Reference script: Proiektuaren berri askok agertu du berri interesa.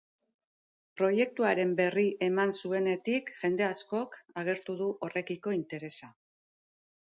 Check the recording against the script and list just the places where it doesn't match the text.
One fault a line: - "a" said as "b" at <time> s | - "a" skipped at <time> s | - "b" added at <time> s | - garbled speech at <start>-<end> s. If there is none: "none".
- "eman zuenetik jende" added at 2.3 s
- "berri" said as "horrekiko" at 5.1 s